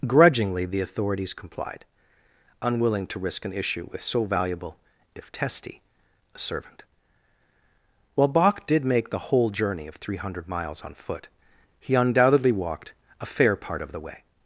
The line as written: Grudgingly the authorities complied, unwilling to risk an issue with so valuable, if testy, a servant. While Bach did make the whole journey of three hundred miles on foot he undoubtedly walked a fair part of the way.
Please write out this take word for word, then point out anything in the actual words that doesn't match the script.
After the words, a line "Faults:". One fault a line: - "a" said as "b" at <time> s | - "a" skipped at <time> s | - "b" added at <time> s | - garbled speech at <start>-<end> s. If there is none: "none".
Grudgingly the authorities complied, unwilling to risk an issue with so valuable, if testy, a servant. While Bach did make the whole journey of three hundred miles on foot he undoubtedly walked a fair part of the way.
Faults:
none